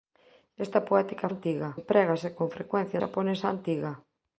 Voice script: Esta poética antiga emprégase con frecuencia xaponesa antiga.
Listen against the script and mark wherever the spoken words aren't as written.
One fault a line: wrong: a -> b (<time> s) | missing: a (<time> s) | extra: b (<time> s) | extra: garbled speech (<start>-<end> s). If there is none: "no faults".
no faults